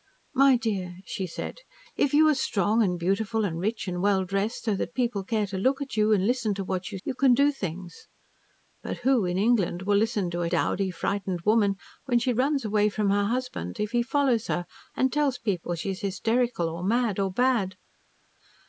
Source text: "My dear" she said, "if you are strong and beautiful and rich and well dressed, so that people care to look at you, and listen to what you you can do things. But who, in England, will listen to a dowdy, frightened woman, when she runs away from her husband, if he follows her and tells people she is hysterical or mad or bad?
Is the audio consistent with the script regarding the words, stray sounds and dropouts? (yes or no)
yes